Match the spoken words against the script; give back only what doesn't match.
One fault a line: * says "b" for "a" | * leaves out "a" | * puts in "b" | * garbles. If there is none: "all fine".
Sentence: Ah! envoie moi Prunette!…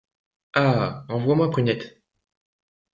all fine